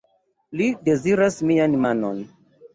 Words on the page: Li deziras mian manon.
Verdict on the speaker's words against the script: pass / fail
pass